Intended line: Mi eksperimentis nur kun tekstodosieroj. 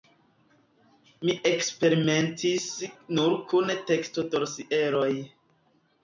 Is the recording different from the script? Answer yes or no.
no